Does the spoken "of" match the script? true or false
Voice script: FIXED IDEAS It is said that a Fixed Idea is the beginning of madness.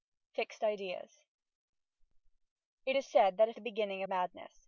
false